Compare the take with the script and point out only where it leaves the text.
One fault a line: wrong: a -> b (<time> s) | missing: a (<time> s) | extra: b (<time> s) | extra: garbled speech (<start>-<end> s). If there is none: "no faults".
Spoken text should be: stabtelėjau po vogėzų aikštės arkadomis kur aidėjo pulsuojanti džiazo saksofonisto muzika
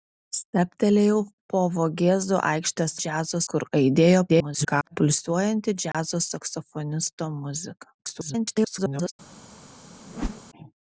wrong: arkadomis -> džiazo (3.0 s)
extra: garbled speech (4.3-5.0 s)
extra: garbled speech (8.0-9.1 s)